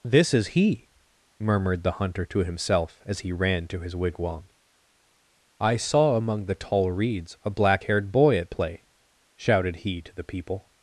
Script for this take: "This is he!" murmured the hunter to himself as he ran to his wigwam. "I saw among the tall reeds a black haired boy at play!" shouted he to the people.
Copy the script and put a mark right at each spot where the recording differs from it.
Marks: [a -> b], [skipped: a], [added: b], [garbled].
"This is he!" murmured the hunter to himself as he ran to his wigwam. "I saw among the tall reeds a black haired boy at play!" shouted he to the people.